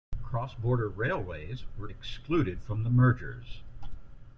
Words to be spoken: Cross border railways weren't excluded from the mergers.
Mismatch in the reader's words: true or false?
true